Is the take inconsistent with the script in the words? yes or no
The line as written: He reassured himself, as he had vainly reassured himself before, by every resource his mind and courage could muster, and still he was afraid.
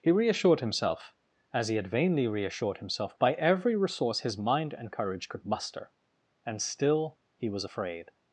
yes